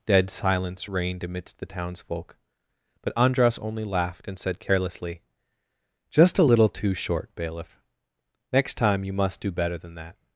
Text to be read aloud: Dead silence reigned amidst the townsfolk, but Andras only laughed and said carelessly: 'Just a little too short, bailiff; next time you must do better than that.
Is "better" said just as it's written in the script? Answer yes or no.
yes